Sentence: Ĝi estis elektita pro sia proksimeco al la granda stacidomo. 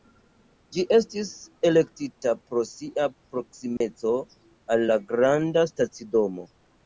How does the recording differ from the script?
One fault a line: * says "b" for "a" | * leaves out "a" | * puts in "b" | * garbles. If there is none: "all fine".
all fine